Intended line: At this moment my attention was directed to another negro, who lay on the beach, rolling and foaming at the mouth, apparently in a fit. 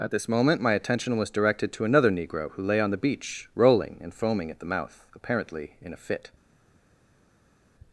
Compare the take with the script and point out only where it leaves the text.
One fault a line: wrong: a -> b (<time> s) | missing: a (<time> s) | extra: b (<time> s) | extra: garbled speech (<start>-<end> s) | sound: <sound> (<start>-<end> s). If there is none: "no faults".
no faults